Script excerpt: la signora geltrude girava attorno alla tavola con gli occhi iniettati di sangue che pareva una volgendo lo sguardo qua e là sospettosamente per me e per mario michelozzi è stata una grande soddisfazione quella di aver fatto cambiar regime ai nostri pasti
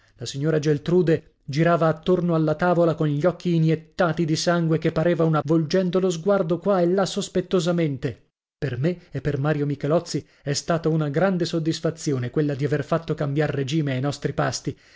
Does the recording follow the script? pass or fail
pass